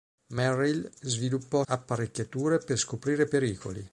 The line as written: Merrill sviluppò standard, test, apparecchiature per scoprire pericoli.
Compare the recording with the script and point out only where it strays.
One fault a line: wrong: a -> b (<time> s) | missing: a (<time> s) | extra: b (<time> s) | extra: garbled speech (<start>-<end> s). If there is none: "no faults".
missing: standard test (1.6 s)